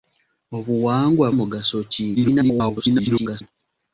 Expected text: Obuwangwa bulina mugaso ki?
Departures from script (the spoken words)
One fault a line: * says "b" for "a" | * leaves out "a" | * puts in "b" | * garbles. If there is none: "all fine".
* leaves out "bulina"
* garbles